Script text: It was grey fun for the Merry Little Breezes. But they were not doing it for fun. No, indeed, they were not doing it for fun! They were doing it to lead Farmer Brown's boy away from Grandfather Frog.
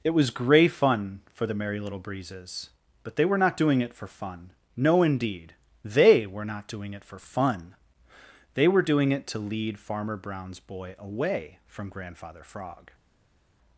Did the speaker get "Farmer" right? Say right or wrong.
right